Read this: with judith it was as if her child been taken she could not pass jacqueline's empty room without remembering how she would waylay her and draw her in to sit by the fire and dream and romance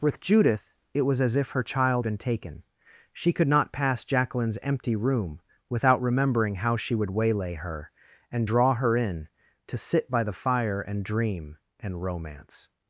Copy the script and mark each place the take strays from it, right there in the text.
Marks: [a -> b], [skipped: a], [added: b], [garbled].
with judith it was as if her child been taken she could not pass jacqueline's empty room without remembering how she would waylay her and draw her in to sit by the fire and dream and romance